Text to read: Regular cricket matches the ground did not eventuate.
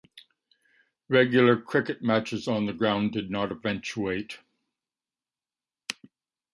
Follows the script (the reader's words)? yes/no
no